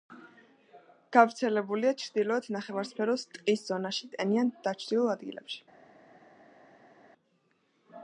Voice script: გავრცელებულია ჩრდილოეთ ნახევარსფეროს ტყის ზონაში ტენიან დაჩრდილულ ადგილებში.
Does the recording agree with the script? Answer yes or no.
yes